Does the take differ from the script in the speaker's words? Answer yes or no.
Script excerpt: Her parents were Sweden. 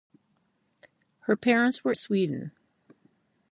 no